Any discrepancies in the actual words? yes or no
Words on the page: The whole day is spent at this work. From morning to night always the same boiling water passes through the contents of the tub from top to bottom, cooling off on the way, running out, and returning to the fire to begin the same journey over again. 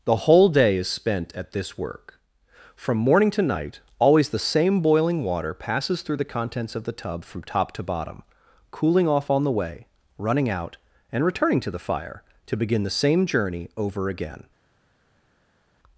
no